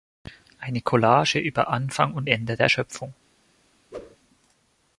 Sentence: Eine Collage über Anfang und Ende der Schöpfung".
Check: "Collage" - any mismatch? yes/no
no